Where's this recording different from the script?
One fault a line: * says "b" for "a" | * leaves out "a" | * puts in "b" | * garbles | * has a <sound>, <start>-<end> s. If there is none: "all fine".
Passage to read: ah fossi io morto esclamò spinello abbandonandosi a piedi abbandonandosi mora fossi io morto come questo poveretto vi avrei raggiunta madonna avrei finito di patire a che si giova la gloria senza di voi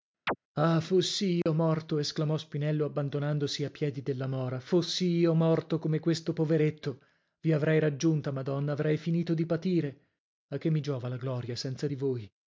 * has a chirp, 0.3-0.4 s
* has a dropout, 1.4-1.5 s
* says "della" for "abbandonandosi"
* says "mi" for "si"